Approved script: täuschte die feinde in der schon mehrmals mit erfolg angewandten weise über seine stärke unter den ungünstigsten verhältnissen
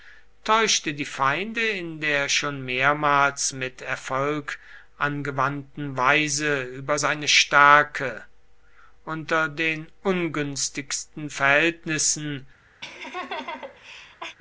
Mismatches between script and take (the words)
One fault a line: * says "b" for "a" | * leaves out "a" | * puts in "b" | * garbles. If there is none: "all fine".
all fine